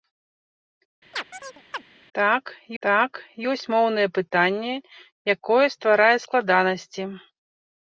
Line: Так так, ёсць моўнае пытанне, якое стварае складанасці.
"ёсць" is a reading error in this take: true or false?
false